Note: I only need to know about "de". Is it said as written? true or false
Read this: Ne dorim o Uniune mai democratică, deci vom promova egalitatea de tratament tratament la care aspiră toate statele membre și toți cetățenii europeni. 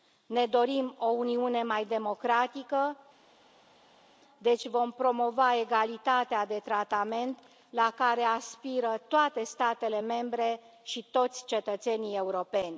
true